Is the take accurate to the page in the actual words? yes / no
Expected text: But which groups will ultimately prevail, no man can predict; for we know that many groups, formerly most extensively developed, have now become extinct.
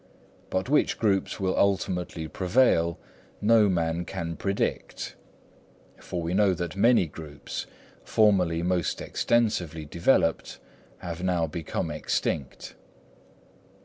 yes